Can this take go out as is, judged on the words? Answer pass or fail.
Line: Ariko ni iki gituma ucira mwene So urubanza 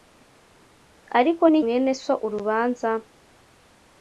fail